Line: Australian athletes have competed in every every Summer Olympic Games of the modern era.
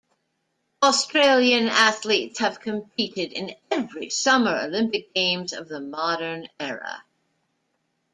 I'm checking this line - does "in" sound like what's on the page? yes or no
yes